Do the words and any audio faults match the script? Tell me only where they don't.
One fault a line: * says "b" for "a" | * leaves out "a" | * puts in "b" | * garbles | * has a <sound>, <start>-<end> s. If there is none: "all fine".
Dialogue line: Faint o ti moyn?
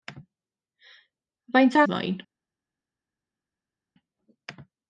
all fine